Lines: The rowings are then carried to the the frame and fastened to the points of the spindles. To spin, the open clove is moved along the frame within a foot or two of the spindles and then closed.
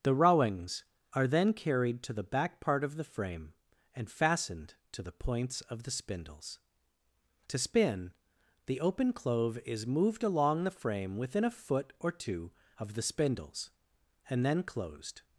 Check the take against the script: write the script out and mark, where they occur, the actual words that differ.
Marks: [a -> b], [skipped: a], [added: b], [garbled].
The rowings are then carried to the [added: back part of] the frame and fastened to the points of the spindles. To spin, the open clove is moved along the frame within a foot or two of the spindles and then closed.